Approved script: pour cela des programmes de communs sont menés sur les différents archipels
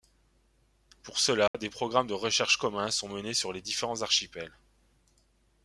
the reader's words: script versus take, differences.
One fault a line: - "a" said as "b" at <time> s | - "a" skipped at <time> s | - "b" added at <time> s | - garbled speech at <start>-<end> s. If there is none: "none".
- "recherche" added at 2.1 s